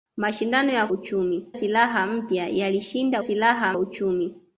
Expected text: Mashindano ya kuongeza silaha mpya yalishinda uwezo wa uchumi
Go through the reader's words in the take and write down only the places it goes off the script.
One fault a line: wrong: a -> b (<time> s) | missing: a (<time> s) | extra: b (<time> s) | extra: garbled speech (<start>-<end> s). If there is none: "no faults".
wrong: kuongeza -> uchumi (0.9 s)
wrong: uwezo -> silaha (3.2 s)